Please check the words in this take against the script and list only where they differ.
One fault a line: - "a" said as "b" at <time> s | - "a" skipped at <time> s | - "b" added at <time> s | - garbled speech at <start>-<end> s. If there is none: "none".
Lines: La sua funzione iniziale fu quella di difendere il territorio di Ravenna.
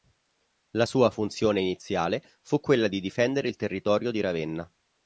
none